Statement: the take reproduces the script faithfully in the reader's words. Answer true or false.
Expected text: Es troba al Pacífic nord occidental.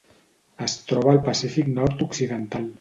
true